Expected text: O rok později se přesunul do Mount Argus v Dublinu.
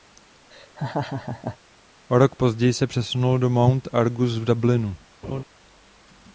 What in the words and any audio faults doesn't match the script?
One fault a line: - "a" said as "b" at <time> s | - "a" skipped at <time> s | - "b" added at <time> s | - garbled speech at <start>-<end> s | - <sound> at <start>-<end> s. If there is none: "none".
- laugh at 0.5-1.6 s
- laugh at 5.2-5.4 s